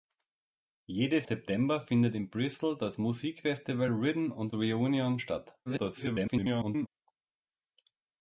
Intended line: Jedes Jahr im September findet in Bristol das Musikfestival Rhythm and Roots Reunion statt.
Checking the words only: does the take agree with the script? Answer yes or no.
no